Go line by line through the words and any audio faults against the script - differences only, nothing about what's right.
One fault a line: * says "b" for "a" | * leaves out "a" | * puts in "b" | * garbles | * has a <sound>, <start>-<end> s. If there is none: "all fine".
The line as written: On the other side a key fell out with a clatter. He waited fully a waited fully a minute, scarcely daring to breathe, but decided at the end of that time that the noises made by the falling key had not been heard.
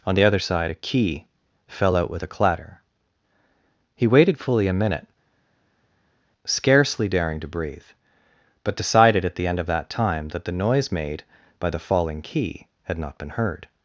* leaves out "waited fully a"
* says "noise" for "noises"